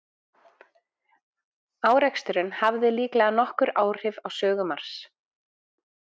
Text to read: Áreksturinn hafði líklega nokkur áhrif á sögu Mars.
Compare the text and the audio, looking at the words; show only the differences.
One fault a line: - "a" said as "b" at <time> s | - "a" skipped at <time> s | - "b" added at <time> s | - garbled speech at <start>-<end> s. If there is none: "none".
none